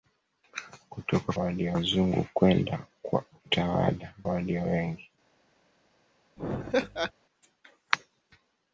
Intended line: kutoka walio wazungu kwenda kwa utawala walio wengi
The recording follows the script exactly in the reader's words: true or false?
true